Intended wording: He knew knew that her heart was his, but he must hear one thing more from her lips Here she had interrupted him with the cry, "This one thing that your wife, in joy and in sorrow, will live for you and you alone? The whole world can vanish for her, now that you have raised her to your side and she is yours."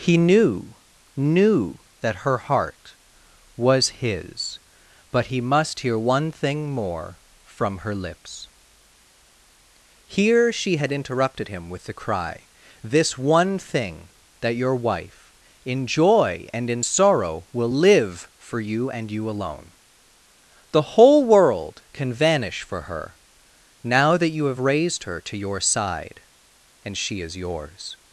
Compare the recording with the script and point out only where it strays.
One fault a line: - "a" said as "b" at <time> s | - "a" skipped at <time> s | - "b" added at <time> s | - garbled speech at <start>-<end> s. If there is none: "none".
none